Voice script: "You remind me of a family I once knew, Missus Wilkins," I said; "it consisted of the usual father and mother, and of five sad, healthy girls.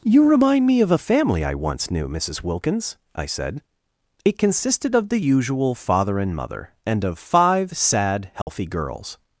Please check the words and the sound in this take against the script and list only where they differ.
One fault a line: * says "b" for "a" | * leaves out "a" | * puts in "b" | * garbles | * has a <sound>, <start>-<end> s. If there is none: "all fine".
* has a dropout, 8.4-8.5 s